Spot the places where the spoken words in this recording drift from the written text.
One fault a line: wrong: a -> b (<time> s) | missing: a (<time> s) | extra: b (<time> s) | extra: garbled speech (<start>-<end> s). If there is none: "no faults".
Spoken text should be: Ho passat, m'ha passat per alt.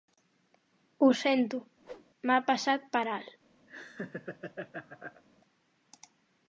wrong: passat -> sento (1.2 s)